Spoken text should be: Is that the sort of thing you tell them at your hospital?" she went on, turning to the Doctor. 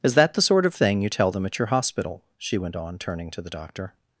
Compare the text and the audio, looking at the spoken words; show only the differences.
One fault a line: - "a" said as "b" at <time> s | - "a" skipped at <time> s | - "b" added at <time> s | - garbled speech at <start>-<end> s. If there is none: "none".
none